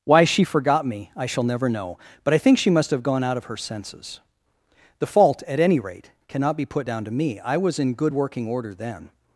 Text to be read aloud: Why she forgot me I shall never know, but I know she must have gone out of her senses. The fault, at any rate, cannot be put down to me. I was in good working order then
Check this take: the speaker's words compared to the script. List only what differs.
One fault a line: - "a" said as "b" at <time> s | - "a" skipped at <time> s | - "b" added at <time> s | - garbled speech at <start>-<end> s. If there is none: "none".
- "know" said as "think" at 2.4 s